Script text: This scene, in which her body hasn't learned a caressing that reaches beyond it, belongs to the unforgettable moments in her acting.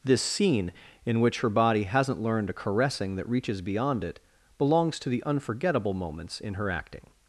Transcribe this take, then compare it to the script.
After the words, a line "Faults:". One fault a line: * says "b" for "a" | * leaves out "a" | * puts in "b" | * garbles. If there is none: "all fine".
This scene, in which her body hasn't learned a caressing that reaches beyond it, belongs to the unforgettable moments in her acting.
Faults:
all fine